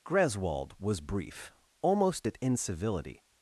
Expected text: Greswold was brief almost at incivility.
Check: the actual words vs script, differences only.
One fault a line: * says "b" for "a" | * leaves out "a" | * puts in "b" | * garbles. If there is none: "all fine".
all fine